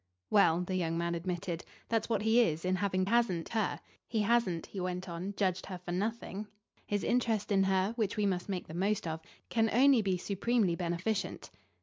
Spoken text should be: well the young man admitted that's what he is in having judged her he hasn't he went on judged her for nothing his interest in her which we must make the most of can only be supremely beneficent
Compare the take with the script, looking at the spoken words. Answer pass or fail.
fail